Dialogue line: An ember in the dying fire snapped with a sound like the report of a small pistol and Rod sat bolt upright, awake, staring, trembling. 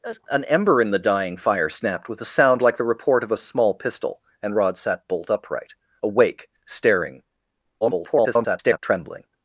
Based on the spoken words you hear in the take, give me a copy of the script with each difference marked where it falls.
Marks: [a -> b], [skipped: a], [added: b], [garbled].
An ember in the dying fire snapped with a sound like the report of a small pistol and Rod sat bolt upright, awake, staring, [garbled] trembling.